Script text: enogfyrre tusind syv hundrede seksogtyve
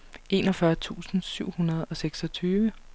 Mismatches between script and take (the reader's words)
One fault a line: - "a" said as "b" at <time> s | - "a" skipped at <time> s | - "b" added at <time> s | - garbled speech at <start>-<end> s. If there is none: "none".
- "og" added at 1.9 s